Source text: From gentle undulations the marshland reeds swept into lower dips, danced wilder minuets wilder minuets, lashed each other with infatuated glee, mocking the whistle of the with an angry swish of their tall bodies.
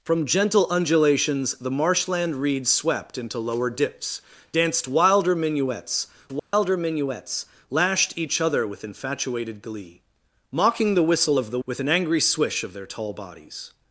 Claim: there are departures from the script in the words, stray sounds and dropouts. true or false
true